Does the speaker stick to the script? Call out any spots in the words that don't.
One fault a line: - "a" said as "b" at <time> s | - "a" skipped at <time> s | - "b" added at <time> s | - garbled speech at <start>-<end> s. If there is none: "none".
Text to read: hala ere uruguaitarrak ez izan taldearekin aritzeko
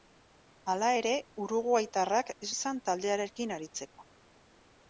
none